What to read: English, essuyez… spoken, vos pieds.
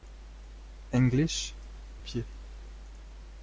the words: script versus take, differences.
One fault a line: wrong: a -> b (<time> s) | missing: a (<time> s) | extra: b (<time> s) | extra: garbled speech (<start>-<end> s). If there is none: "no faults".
missing: essuyez spoken vos (1.5 s)